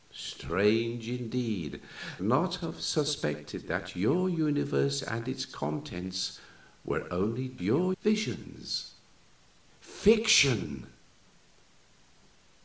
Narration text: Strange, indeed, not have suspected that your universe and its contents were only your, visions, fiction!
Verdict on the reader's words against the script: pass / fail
pass